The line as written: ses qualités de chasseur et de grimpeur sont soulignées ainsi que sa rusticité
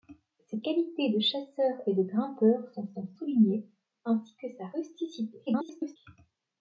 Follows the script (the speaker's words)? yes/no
no